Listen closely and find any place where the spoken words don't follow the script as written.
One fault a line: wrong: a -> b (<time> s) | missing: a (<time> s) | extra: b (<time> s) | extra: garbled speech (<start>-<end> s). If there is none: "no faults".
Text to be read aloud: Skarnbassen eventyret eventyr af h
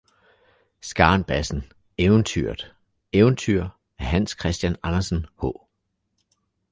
extra: hans christian andersen (4.0 s)